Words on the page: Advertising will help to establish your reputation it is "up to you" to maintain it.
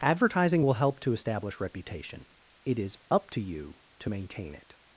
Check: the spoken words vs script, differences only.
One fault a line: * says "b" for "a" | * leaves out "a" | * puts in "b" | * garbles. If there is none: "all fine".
* leaves out "your"